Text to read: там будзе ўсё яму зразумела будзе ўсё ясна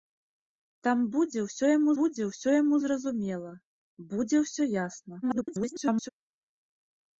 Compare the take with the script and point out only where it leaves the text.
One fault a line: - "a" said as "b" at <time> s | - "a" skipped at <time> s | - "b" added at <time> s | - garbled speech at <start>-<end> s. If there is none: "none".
- "будзе ўсё яму" added at 2.0 s
- garbled speech at 5.2-6.1 s